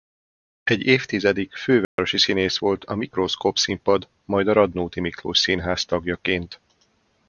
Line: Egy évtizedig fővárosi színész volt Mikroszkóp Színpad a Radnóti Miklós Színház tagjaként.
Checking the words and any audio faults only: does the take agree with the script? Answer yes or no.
no